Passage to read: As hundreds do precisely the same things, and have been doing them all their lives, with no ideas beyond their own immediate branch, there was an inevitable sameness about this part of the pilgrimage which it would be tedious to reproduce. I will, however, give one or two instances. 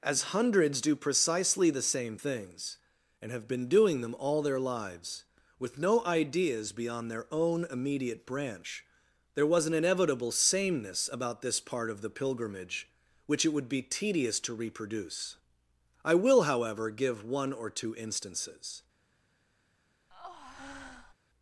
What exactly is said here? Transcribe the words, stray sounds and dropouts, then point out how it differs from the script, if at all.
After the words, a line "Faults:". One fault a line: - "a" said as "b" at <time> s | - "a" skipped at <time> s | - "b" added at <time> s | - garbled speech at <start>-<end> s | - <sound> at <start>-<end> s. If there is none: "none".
As hundreds do precisely the same things, and have been doing them all their lives, with no ideas beyond their own immediate branch, there was an inevitable sameness about this part of the pilgrimage which it would be tedious to reproduce. I will, however, give one or two instances.
Faults:
- breath at 20.1-21.1 s